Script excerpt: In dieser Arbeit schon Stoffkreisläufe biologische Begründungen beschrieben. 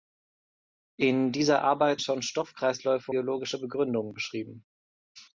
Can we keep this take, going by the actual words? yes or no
yes